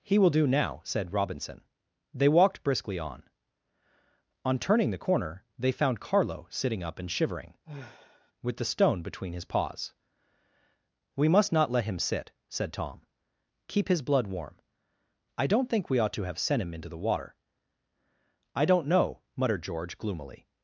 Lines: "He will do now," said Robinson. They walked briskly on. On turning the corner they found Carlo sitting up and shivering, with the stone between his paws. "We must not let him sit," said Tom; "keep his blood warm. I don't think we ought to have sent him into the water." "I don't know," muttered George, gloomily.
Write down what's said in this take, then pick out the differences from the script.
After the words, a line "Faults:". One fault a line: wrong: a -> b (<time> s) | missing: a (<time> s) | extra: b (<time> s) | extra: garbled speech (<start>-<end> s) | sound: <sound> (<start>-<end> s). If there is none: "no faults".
"He will do now," said Robinson. They walked briskly on. On turning the corner they found Carlo sitting up and shivering, with the stone between his paws. "We must not let him sit," said Tom; "keep his blood warm. I don't think we ought to have sent him into the water." "I don't know," muttered George, gloomily.
Faults:
sound: sigh (7.6-8.3 s)